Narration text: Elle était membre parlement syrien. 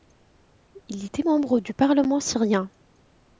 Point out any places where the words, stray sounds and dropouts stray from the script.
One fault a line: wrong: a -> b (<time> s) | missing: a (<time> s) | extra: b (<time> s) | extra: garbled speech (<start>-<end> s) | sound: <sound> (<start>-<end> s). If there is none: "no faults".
wrong: Elle -> Il (0.9 s)
extra: du (1.6 s)